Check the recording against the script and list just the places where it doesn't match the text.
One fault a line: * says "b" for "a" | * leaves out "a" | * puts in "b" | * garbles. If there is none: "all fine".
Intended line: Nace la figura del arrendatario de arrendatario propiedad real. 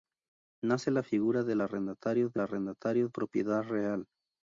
all fine